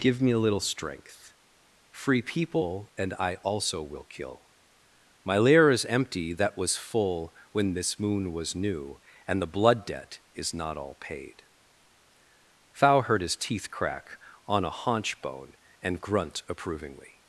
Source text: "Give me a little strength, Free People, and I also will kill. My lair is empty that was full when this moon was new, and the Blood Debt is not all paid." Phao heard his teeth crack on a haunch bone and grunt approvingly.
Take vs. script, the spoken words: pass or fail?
pass